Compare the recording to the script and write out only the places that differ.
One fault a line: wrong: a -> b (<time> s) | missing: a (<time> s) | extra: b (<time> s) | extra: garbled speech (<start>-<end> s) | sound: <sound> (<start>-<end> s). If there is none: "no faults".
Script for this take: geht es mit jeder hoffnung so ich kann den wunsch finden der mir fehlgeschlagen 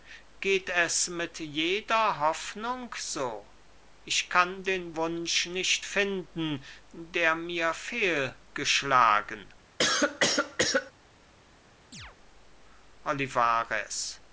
extra: nicht (5.5 s)
sound: cough (9.8-10.9 s)
sound: chirp (11.9-12.2 s)